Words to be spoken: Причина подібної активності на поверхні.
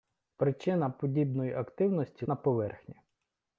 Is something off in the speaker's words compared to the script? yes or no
no